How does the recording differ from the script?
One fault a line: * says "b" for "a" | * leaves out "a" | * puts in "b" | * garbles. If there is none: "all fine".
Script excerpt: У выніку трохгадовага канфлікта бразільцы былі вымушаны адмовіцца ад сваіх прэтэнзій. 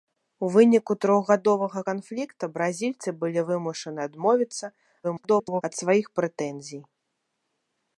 * garbles